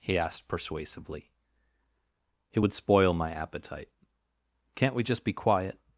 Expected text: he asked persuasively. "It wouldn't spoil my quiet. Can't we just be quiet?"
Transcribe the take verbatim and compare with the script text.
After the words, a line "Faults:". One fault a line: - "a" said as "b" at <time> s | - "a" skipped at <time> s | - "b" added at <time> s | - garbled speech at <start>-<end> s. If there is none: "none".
he asked persuasively. "It would spoil my appetite. Can't we just be quiet?"
Faults:
- "wouldn't" said as "would" at 2.6 s
- "quiet" said as "appetite" at 3.3 s